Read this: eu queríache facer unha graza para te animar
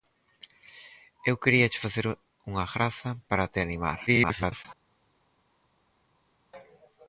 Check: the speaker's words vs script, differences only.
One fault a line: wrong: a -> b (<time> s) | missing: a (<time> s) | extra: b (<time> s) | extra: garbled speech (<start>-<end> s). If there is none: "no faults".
extra: garbled speech (4.1-4.7 s)